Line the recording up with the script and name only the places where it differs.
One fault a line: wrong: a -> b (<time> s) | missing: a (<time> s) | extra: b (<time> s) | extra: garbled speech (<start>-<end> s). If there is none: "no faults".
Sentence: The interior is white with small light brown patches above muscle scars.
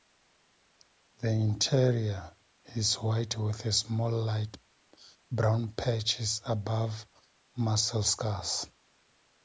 no faults